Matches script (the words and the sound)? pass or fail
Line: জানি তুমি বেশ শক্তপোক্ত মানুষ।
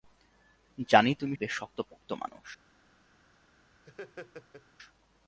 fail